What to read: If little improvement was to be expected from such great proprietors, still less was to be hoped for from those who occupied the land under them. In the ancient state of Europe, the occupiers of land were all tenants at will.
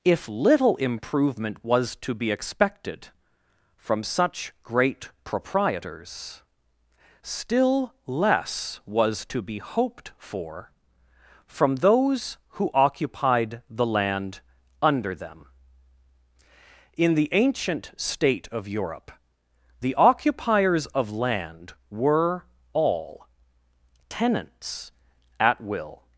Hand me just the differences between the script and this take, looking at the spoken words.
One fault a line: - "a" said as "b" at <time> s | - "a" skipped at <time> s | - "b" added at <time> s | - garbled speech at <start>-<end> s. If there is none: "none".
none